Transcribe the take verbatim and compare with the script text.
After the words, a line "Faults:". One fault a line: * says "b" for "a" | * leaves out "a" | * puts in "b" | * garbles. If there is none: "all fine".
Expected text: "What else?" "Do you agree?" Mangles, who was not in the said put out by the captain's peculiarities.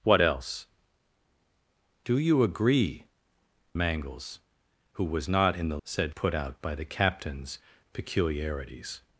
"What else?" "Do you agree?" Mangles, who was not in the said put out by the captain's peculiarities.
Faults:
all fine